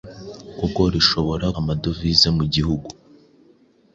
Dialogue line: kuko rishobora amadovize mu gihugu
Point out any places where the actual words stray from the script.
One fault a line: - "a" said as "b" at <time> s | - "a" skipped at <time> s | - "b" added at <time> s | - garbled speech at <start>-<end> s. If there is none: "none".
none